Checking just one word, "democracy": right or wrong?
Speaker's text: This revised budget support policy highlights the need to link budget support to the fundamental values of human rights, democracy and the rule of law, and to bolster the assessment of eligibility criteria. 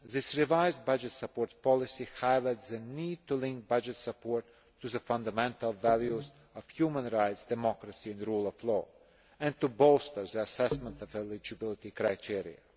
right